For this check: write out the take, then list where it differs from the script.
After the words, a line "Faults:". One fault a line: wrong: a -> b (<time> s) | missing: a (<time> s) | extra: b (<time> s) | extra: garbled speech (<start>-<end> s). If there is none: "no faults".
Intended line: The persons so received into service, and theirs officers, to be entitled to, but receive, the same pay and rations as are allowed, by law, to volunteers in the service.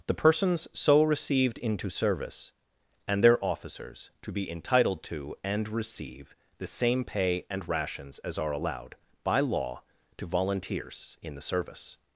The persons so received into service, and their officers, to be entitled to, and receive, the same pay and rations as are allowed, by law, to volunteers in the service.
Faults:
wrong: theirs -> their (3.2 s)
wrong: but -> and (5.4 s)